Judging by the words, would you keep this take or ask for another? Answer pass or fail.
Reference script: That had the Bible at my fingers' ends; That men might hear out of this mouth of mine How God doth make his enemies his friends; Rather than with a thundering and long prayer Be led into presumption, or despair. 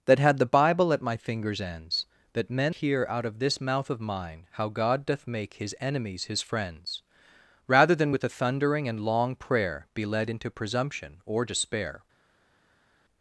fail